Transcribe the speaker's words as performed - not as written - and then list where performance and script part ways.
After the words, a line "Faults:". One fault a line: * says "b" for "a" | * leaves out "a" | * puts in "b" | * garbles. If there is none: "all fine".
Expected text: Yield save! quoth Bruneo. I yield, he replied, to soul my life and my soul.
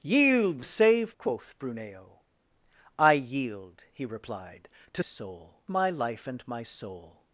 Yield save! quoth Bruneo. I yield, he replied, to soul my life and my soul.
Faults:
all fine